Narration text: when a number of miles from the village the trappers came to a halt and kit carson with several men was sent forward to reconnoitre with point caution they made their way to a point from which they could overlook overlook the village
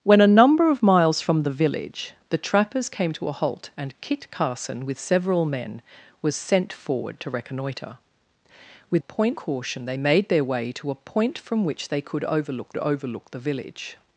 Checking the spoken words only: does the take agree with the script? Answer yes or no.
yes